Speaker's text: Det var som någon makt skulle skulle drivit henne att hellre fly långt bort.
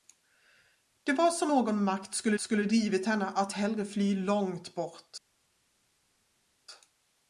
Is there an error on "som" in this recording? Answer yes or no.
no